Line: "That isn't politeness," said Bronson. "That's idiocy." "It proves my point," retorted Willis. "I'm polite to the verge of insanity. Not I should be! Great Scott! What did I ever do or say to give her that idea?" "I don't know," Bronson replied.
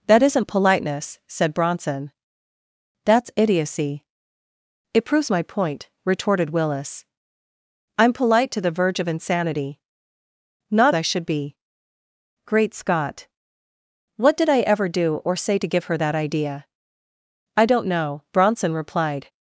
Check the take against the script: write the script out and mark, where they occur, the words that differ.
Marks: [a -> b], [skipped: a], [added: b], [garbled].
"That isn't politeness," said Bronson. "That's idiocy." "It proves my point," retorted Willis. "I'm polite to the verge of insanity. Not I should be! Great Scott! What did I ever do or say to give her that idea?" "I don't know," Bronson replied.